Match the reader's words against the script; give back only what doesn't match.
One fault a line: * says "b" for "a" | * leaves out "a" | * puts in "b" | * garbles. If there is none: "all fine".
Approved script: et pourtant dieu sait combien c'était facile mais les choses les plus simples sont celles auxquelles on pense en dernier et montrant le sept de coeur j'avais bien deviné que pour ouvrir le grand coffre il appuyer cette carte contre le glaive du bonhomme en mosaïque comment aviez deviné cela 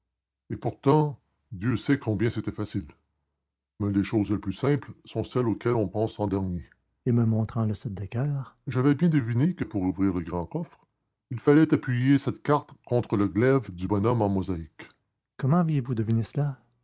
* puts in "me"
* puts in "fallait"
* puts in "vous"